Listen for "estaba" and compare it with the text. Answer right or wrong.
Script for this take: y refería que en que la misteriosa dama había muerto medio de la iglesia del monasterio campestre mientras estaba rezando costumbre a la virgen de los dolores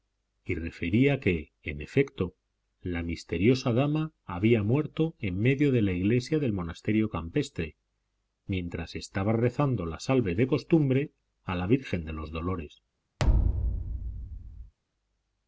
right